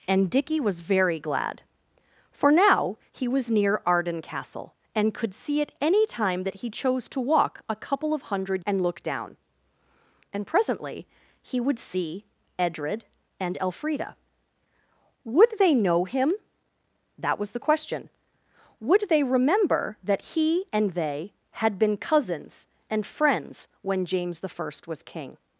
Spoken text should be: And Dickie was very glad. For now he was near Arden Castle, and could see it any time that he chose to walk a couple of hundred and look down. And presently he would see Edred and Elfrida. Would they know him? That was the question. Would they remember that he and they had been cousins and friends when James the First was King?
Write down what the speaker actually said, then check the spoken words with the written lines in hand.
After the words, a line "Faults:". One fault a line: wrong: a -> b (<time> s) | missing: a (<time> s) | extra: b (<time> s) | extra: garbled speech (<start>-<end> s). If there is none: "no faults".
And Dickie was very glad. For now he was near Arden Castle, and could see it any time that he chose to walk a couple of hundred and look down. And presently he would see Edred and Elfrida. Would they know him? That was the question. Would they remember that he and they had been cousins and friends when James the First was King?
Faults:
no faults